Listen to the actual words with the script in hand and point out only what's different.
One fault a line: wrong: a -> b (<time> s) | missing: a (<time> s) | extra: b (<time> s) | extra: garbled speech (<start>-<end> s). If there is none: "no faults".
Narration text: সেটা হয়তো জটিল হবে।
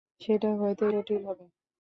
no faults